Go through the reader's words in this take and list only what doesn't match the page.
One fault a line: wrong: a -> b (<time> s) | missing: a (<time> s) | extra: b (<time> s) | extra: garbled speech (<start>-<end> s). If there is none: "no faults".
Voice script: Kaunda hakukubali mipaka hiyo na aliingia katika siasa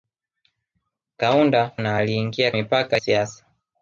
missing: hakukubali mipaka hiyo (1.7 s)
wrong: katika -> mipaka (2.5 s)